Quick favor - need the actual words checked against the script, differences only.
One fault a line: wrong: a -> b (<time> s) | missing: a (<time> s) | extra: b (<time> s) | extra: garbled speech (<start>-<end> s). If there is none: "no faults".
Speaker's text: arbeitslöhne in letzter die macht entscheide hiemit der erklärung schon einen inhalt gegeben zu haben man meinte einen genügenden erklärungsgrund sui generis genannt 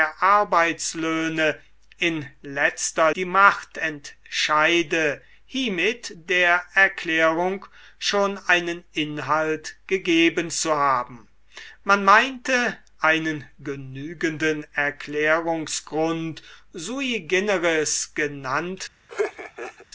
no faults